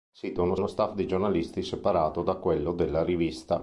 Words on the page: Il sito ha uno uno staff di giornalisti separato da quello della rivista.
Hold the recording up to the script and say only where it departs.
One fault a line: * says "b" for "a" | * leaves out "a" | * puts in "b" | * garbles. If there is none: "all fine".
all fine